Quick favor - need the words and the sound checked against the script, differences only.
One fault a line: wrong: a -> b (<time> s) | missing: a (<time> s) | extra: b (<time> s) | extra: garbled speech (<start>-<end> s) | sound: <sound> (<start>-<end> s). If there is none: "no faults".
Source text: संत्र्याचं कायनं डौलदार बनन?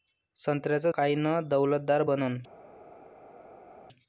no faults